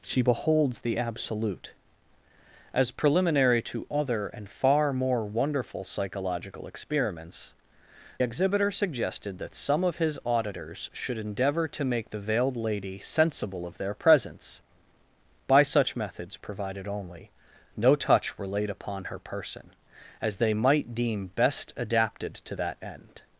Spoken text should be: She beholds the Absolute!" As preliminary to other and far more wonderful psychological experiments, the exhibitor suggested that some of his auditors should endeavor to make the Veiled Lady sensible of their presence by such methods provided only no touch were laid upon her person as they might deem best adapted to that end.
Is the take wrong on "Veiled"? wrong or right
right